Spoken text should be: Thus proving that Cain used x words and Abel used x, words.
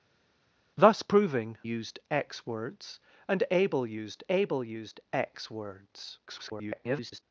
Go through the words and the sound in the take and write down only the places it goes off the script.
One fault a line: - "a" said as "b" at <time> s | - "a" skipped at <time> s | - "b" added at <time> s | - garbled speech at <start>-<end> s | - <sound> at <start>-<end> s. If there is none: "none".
- "that Cain" skipped at 1.6 s
- "Abel used" added at 4.3 s
- garbled speech at 6.3-7.2 s